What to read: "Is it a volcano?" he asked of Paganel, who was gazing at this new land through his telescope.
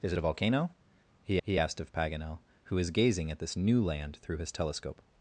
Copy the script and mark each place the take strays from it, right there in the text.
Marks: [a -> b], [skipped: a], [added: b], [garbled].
"Is it a volcano?" he [added: he] asked of Paganel, who was gazing at this new land through his telescope.